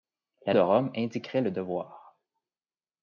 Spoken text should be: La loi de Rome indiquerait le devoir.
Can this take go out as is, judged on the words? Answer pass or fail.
fail